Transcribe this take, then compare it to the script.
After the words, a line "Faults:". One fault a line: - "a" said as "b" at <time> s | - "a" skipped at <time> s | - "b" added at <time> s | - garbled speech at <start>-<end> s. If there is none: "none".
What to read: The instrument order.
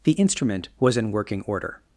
The instrument was in working order.
Faults:
- "was in working" added at 0.8 s